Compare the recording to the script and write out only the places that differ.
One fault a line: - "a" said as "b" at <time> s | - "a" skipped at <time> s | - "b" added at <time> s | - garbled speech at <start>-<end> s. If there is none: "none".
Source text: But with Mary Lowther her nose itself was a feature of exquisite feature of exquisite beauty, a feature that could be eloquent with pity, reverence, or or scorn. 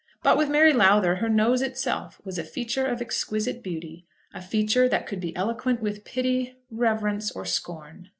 - "feature of exquisite" skipped at 3.6 s
- "or" skipped at 7.4 s